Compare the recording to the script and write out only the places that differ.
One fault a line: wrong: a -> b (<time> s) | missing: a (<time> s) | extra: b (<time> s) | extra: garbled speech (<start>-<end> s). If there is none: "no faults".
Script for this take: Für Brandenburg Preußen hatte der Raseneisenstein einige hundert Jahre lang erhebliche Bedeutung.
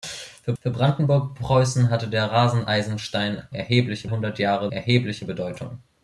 extra: für (0.6 s)
wrong: einige -> erhebliche (3.5 s)
missing: lang (4.7 s)